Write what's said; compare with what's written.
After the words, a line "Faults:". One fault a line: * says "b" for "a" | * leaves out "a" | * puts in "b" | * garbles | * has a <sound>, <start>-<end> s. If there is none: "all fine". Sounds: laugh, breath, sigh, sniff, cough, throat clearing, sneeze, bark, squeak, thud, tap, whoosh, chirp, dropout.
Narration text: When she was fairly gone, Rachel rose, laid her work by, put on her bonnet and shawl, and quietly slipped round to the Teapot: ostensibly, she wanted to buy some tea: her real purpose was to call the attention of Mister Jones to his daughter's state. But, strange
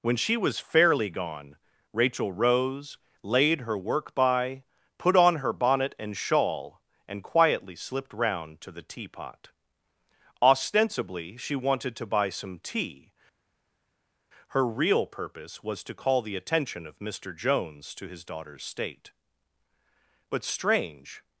When she was fairly gone, Rachel rose, laid her work by, put on her bonnet and shawl, and quietly slipped round to the Teapot: ostensibly, she wanted to buy some tea: her real purpose was to call the attention of Mister Jones to his daughter's state. But, strange
Faults:
all fine